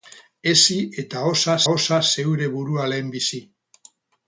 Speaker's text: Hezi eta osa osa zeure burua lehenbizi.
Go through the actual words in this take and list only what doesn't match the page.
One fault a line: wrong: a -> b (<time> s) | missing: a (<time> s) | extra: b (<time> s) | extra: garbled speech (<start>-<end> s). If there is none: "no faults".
no faults